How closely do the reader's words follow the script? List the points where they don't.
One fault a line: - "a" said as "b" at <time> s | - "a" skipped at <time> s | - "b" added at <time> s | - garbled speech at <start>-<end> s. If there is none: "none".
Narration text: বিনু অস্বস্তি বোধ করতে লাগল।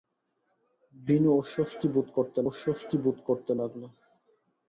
- "অস্বস্তি বোধ করতে" added at 2.5 s